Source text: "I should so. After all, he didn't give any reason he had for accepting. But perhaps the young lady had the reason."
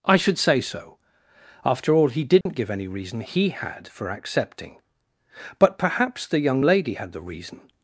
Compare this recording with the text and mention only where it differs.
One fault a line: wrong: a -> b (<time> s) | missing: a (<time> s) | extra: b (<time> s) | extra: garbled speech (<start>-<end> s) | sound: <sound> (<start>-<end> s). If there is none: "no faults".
extra: say (0.4 s)
sound: dropout (2.4-2.5 s)